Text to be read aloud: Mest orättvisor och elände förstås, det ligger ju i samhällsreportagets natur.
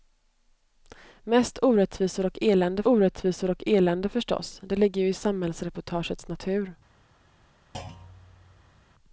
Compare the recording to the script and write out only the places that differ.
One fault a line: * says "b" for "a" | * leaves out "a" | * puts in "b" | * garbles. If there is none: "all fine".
* puts in "orättvisor och elände"